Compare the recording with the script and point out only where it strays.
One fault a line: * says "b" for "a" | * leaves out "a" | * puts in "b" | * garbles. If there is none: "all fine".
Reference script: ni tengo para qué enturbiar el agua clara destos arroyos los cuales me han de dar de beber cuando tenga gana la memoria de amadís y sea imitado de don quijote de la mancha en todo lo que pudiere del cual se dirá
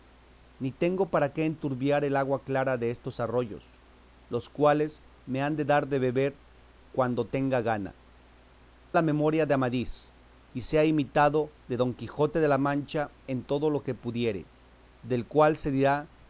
all fine